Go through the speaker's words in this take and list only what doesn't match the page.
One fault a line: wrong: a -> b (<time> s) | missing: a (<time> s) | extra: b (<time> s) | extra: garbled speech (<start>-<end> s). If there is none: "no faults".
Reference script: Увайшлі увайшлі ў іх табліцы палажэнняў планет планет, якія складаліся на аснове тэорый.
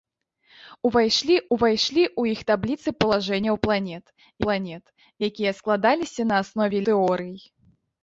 no faults